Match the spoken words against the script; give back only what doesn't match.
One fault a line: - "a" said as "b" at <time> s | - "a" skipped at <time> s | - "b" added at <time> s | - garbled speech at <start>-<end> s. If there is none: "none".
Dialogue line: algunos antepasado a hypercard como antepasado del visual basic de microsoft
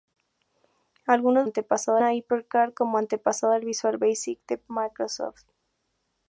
none